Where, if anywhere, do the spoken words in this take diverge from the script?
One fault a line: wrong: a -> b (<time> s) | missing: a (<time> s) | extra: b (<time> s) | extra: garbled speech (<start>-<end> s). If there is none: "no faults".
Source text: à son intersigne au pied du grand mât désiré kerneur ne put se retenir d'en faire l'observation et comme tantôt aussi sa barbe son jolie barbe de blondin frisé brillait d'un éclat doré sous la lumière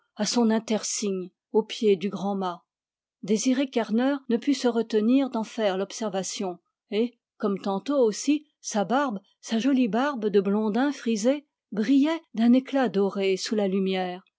wrong: son -> sa (9.4 s)